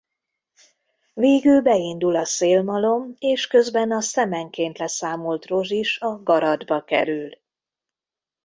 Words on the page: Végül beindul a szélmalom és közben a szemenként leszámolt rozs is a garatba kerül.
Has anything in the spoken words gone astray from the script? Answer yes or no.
no